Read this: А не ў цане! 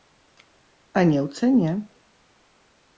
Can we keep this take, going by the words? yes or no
yes